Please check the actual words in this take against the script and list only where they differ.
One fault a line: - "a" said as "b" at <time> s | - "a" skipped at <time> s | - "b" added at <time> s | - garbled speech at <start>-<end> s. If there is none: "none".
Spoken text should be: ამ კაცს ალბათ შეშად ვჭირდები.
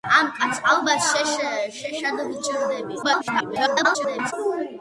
- garbled speech at 3.0-4.3 s